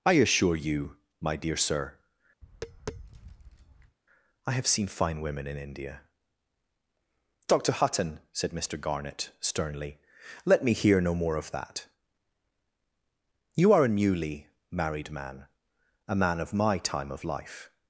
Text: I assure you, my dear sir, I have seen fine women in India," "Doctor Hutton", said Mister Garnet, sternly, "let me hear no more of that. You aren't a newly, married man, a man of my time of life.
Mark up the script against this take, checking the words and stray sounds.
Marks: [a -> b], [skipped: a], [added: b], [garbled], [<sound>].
I assure you, my dear sir, [tap] I have seen fine women in India," "Doctor Hutton", said Mister Garnet, sternly, "let me hear no more of that. You [aren't -> are] a newly, married man, a man of my time of life.